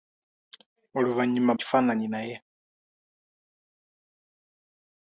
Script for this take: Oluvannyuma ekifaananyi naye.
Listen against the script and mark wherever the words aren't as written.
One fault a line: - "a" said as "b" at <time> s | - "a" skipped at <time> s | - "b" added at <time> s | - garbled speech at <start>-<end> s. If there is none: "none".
none